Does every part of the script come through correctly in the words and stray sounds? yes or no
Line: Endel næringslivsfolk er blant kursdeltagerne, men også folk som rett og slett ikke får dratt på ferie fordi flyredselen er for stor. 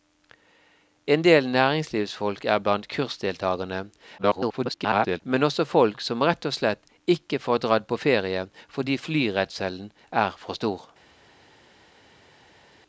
no